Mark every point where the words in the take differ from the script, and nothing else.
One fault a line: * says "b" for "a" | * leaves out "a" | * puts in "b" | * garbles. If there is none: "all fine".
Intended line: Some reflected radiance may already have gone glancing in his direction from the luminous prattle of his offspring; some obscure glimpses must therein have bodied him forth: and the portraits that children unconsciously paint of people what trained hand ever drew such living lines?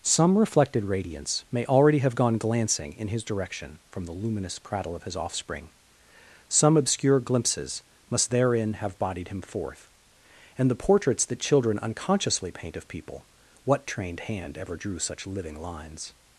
all fine